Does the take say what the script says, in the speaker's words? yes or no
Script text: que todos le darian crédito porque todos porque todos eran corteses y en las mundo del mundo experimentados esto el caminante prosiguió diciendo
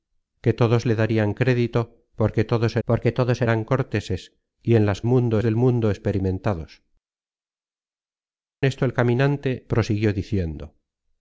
yes